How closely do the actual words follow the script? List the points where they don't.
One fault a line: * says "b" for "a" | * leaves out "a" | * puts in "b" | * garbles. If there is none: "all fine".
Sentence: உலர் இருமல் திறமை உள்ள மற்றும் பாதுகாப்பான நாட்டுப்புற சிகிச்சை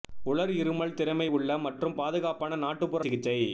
all fine